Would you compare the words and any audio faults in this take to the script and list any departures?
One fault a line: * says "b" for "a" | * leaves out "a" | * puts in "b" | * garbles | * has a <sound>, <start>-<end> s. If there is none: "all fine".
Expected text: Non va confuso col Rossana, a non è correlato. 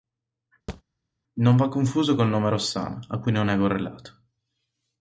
* has a thud, 0.7-0.8 s
* puts in "nome"
* puts in "cui"